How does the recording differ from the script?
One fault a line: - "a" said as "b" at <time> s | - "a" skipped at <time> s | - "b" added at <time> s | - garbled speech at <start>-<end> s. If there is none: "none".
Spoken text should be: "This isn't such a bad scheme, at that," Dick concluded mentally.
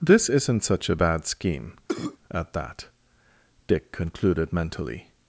none